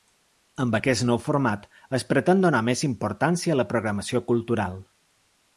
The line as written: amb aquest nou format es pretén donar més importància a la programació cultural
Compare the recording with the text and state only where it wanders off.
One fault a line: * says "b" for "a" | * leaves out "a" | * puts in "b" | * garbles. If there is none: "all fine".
all fine